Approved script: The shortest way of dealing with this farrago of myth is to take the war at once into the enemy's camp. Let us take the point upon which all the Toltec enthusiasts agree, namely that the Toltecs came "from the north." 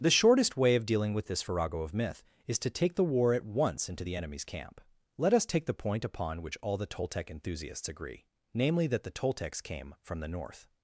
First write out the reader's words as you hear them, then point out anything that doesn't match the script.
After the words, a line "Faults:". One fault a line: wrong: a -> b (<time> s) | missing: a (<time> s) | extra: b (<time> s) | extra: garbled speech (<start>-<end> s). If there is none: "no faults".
The shortest way of dealing with this farrago of myth is to take the war at once into the enemy's camp. Let us take the point upon which all the Toltec enthusiasts agree, namely that the Toltecs came "from the north."
Faults:
no faults